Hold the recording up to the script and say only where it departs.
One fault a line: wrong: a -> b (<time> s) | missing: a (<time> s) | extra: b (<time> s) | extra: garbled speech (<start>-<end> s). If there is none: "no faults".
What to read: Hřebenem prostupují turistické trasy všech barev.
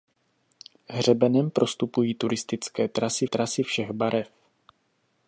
extra: trasy (3.2 s)